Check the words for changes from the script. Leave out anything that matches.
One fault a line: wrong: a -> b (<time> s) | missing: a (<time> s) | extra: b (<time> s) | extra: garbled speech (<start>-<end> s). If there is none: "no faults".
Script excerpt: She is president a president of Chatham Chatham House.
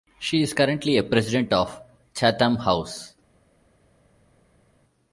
wrong: president -> currently (0.5 s)
missing: Chatham (2.5 s)